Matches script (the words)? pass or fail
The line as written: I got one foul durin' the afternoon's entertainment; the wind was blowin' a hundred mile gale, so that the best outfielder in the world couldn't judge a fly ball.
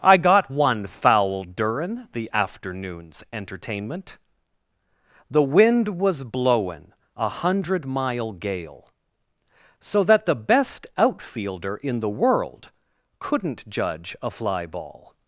pass